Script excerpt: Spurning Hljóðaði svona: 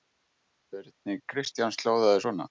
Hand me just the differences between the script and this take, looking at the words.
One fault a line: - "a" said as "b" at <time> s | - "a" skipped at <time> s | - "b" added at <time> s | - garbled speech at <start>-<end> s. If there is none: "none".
- "Kristjáns" added at 1.3 s